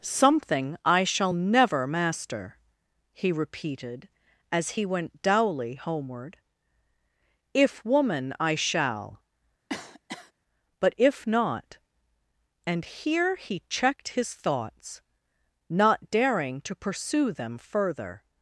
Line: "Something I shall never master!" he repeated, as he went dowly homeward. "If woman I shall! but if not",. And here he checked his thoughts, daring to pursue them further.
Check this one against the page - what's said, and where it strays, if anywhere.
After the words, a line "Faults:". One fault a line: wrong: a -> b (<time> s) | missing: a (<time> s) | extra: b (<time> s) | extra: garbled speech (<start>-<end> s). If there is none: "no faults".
"Something I shall never master!" he repeated, as he went dowly homeward. "If woman I shall! but if not",. And here he checked his thoughts, not daring to pursue them further.
Faults:
extra: not (15.7 s)